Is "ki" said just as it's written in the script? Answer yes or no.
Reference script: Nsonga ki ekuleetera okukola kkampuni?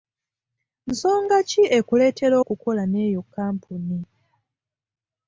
yes